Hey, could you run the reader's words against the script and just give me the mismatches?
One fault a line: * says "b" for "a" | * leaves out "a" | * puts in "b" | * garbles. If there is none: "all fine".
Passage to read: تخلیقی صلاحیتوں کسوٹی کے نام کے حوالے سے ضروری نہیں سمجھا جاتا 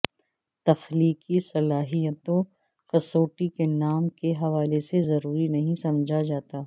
all fine